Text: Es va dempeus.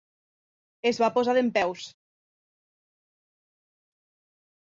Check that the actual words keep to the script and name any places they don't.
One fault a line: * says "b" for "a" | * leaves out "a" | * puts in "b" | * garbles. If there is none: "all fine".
* puts in "posar"